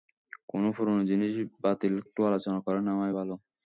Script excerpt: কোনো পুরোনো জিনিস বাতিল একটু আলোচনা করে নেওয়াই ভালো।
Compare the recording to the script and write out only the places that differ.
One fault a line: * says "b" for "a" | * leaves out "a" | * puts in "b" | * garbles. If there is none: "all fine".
all fine